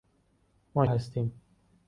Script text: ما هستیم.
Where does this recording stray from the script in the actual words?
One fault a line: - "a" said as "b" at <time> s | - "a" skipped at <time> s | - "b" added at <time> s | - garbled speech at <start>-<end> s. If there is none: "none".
none